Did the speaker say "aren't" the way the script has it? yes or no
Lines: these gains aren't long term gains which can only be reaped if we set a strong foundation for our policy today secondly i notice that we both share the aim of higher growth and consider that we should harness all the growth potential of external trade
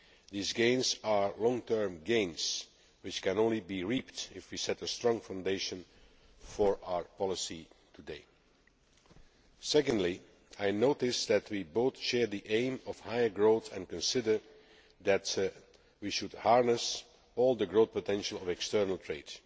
no